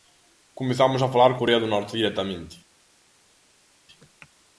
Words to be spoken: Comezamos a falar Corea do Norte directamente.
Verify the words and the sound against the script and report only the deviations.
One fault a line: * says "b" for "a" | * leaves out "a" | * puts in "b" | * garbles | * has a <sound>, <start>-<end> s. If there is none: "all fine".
all fine